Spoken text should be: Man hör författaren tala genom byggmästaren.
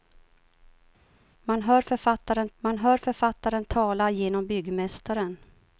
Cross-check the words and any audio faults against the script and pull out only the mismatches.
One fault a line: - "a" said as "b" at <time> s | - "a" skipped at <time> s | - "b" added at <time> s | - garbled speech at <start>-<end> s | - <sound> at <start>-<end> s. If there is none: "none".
- "man hör författaren" added at 2.6 s